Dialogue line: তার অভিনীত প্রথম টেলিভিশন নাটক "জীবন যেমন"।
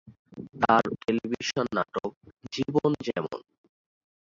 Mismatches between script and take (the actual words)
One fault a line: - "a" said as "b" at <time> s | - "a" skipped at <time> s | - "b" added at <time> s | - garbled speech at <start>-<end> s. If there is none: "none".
- "অভিনীত প্রথম" skipped at 0.8 s